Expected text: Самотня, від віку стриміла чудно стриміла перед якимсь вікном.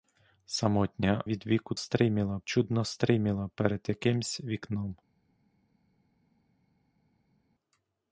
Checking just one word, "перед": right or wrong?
right